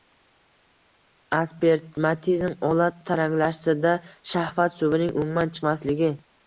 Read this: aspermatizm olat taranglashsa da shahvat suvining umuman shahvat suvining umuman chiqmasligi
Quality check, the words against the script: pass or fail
fail